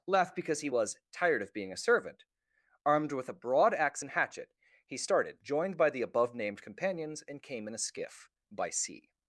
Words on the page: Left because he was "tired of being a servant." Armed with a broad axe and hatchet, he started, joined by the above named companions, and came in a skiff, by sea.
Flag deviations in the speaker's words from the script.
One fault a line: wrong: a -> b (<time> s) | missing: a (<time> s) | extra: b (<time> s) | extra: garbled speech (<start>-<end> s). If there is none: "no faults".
no faults